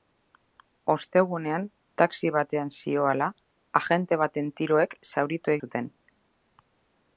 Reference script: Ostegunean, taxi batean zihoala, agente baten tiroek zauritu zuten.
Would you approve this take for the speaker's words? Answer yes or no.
yes